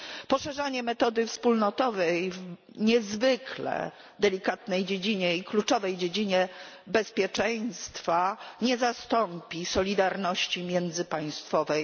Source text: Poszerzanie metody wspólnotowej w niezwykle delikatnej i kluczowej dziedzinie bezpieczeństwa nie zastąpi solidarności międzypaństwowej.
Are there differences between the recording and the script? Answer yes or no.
no